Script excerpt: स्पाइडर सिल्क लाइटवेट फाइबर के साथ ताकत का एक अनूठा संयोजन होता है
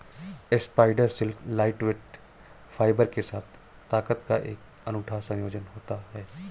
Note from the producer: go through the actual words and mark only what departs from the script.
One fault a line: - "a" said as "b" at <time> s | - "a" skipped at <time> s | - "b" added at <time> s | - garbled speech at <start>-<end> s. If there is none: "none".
none